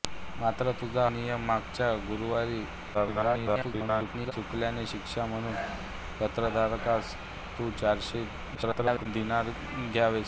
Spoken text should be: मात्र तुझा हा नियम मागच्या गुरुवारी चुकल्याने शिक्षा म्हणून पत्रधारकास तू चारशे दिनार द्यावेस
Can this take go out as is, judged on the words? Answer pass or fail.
fail